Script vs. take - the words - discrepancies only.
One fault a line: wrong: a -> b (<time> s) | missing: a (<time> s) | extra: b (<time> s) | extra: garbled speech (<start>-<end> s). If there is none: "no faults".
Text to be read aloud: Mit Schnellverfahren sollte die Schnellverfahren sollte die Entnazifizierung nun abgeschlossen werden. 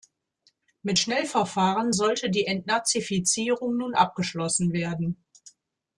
missing: Schnellverfahren sollte die (2.5 s)